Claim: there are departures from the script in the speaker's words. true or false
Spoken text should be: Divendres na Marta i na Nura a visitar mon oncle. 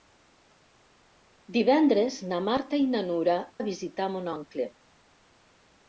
false